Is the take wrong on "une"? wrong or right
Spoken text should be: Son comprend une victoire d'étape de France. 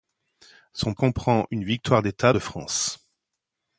right